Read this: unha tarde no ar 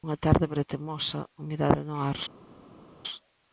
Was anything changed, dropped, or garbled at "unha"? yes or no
no